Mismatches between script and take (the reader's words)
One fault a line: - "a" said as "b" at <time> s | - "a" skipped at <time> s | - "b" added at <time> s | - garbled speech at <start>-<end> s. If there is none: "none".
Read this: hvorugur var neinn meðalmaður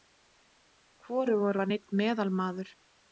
none